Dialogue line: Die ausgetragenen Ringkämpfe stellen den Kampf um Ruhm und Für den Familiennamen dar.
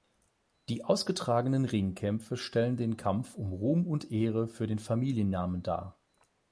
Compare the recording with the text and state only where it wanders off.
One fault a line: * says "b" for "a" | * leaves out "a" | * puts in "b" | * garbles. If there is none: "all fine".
* puts in "Ehre"